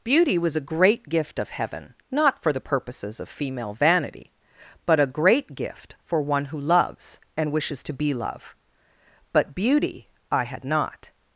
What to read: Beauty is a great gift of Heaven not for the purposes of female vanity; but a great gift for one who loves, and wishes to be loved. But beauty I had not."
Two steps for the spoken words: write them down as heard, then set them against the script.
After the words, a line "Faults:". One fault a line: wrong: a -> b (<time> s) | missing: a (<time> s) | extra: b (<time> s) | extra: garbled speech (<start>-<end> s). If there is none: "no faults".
Beauty was a great gift of Heaven not for the purposes of female vanity; but a great gift for one who loves, and wishes to be love. But beauty I had not."
Faults:
wrong: is -> was (0.4 s)
wrong: loved -> love (8.1 s)